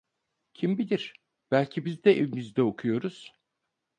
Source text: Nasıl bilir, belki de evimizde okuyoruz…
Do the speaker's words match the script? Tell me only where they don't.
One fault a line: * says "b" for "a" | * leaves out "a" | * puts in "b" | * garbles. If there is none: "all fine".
* says "Kim" for "Nasıl"
* puts in "biz"